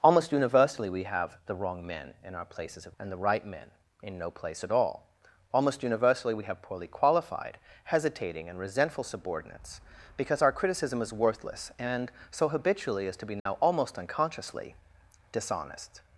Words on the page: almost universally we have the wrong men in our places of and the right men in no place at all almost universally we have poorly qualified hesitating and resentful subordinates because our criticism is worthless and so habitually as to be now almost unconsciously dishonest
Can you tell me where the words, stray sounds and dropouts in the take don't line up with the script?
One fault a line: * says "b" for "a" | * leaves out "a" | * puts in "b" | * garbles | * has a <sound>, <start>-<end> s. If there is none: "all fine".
* has a dropout, 13.4-13.5 s